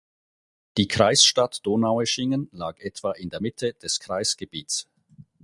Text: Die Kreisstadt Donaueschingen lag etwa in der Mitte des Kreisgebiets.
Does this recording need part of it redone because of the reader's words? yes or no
no